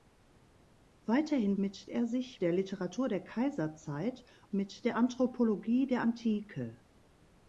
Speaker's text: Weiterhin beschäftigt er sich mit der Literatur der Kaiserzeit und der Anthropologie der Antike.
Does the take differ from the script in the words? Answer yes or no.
yes